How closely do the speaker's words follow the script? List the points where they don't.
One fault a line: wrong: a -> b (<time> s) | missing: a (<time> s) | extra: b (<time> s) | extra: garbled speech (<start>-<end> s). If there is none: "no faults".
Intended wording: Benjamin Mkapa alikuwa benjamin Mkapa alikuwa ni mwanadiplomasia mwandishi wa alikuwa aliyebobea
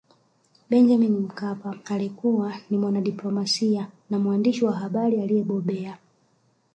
missing: benjamin Mkapa alikuwa (2.5 s)
extra: na (4.1 s)
wrong: alikuwa -> habari (4.7 s)